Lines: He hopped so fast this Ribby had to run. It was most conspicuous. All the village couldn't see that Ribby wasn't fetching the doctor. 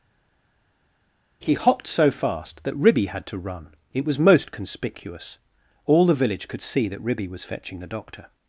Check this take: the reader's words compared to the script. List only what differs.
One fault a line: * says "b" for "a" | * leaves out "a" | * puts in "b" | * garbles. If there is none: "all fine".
* says "that" for "this"
* says "could" for "couldn't"
* says "was" for "wasn't"